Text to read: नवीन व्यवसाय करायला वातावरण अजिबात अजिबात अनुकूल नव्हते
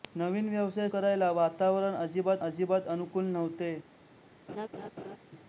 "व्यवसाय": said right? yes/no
yes